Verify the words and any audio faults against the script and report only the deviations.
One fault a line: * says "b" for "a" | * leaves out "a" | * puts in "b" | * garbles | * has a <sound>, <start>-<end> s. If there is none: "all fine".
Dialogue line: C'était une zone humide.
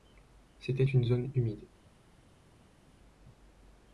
all fine